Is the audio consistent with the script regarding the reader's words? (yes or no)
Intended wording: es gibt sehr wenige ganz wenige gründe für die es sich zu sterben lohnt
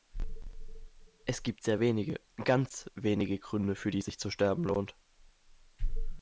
yes